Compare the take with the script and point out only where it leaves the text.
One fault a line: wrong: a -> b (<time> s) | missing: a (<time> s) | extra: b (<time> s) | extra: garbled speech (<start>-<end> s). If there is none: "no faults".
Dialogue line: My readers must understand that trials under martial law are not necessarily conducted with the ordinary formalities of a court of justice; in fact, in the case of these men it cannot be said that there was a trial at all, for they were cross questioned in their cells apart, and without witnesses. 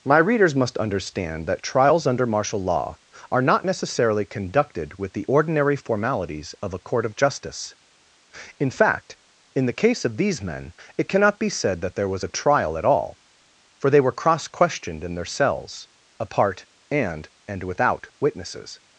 extra: and (17.5 s)